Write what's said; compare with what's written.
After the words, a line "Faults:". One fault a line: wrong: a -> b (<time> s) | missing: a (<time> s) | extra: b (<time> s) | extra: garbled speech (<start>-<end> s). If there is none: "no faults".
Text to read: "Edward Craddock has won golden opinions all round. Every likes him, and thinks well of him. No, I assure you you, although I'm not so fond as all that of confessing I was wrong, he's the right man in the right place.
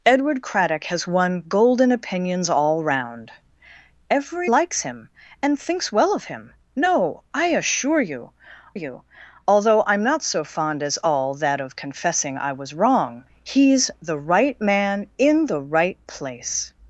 "Edward Craddock has won golden opinions all round. Every likes him, and thinks well of him. No, I assure you you, although I'm not so fond as all that of confessing I was wrong, he's the right man in the right place.
Faults:
no faults